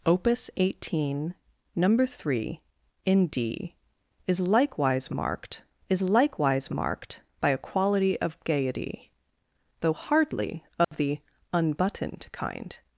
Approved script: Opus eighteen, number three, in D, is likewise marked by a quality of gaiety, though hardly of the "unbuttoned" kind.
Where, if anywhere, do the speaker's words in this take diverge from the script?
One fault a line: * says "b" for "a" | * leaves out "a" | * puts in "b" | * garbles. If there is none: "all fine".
* puts in "is likewise marked"